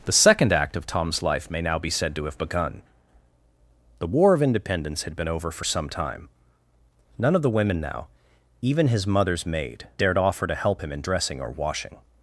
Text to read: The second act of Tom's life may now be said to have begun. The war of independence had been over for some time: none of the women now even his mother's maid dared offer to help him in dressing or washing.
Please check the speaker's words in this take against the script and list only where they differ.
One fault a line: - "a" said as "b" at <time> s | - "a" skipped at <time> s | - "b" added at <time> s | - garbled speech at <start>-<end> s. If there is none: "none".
none